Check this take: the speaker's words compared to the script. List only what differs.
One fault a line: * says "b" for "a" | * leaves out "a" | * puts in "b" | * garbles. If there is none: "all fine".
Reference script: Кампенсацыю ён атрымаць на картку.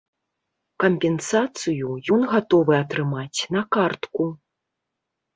* puts in "гатовы"